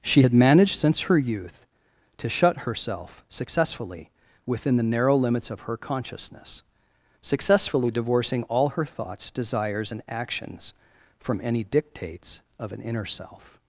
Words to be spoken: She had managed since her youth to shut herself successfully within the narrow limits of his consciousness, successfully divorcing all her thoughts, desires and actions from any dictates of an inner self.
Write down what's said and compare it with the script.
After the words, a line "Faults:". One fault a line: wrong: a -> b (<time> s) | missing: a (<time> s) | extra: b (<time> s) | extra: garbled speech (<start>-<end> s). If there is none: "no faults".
She had managed since her youth to shut herself successfully within the narrow limits of her consciousness, successfully divorcing all her thoughts, desires and actions from any dictates of an inner self.
Faults:
wrong: his -> her (5.6 s)